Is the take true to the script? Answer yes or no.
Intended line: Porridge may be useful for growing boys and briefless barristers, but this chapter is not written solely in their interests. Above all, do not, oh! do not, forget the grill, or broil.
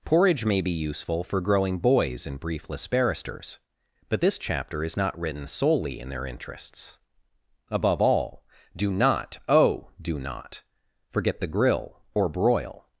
yes